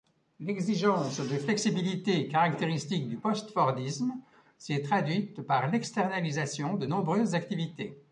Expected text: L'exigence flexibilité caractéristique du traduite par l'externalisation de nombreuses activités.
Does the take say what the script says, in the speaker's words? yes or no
no